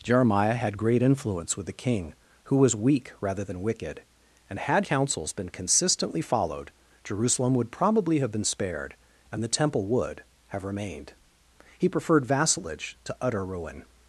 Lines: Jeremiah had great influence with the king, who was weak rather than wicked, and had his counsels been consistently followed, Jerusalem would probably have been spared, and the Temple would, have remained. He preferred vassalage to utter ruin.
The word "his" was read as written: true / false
false